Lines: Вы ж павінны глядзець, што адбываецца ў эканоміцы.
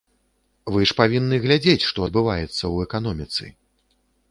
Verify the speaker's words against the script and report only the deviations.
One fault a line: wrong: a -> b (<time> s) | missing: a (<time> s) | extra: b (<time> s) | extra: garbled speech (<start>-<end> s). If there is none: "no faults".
no faults